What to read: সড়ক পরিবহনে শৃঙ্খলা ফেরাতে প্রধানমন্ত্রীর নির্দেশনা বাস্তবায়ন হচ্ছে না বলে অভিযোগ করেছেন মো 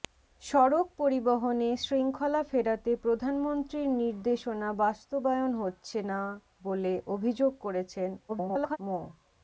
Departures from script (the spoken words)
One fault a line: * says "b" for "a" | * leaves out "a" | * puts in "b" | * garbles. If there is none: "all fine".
* garbles